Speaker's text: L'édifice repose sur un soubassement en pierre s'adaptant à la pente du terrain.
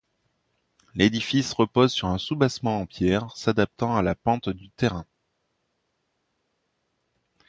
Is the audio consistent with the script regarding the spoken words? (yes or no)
yes